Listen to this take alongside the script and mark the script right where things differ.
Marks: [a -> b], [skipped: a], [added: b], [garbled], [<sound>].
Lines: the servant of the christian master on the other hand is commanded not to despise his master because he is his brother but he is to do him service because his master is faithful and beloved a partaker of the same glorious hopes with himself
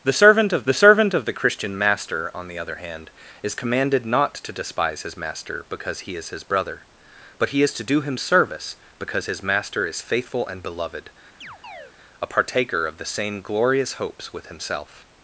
the servant of the [added: servant of the] christian master on the other hand is commanded not to despise his master because he is his brother but he is to do him service because his master is faithful and beloved [chirp] a partaker of the same glorious hopes with himself